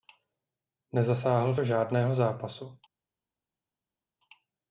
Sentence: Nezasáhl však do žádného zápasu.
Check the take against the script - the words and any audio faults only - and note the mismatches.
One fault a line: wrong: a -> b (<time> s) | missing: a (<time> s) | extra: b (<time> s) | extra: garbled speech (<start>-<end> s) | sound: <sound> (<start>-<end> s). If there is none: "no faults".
missing: však (1.6 s)